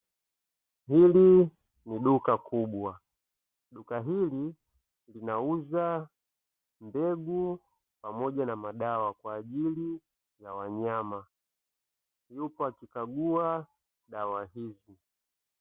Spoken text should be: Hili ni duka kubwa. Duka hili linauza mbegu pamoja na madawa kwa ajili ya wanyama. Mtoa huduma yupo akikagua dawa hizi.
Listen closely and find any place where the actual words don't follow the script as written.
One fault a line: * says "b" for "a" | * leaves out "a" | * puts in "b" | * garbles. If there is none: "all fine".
* leaves out "Mtoa huduma"